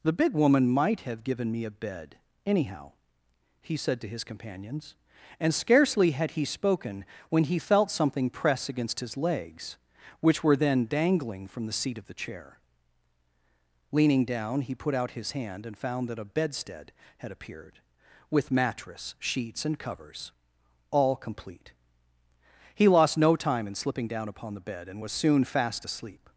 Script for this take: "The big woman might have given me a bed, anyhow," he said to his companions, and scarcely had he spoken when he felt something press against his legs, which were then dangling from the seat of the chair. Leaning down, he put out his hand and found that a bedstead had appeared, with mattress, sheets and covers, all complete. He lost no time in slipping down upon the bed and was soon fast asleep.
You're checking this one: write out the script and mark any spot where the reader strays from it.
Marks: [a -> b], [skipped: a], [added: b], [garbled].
"The big woman might have given me a bed, anyhow," he said to his companions, and scarcely had he spoken when he felt something press against his legs, which were then dangling from the seat of the chair. Leaning down, he put out his hand and found that a bedstead had appeared, with mattress, sheets and covers, all complete. He lost no time in slipping down upon the bed and was soon fast asleep.